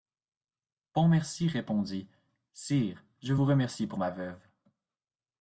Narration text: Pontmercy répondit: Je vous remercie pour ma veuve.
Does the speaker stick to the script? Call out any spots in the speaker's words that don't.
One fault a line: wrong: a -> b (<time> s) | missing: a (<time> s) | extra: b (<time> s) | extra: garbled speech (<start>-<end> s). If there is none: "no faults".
extra: Sire (2.5 s)